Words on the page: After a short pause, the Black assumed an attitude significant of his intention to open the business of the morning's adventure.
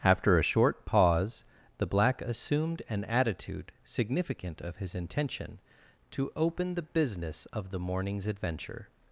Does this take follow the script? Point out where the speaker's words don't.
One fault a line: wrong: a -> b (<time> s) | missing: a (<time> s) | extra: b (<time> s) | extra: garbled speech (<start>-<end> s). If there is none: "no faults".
no faults